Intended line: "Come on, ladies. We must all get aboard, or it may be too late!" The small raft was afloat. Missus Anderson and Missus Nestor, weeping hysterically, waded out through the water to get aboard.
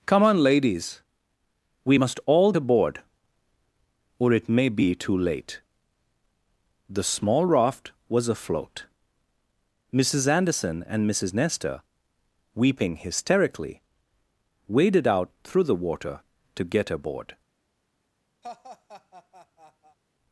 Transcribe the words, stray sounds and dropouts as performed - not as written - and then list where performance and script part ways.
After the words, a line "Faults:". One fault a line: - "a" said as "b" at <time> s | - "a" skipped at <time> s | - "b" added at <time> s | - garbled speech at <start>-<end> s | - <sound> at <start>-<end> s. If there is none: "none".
"Come on, ladies. We must all aboard, or it may be too late!" The small raft was afloat. Missus Anderson and Missus Nestor, weeping hysterically, waded out through the water to get aboard.
Faults:
- "get" skipped at 2.5 s
- laugh at 18.4-20.0 s